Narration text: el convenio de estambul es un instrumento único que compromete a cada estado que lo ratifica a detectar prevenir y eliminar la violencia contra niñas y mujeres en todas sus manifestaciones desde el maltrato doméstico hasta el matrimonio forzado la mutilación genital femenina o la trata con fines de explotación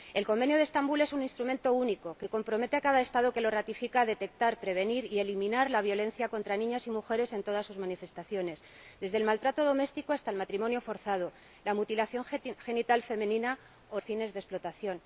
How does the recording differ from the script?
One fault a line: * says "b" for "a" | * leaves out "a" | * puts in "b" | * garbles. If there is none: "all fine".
* leaves out "la trata con"